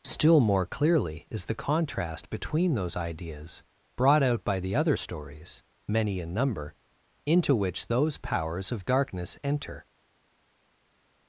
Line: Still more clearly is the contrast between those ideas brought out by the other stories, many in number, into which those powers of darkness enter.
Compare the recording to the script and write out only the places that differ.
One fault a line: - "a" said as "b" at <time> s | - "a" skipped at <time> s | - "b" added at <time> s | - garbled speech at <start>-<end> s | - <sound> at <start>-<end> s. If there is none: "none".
none